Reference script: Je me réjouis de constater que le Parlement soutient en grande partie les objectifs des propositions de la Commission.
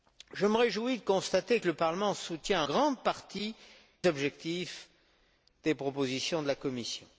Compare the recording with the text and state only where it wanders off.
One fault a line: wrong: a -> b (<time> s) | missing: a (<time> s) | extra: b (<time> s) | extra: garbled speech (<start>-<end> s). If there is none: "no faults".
missing: en (2.6 s)
missing: les (3.5 s)